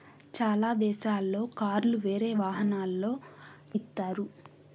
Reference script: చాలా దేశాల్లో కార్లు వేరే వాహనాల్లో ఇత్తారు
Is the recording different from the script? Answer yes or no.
no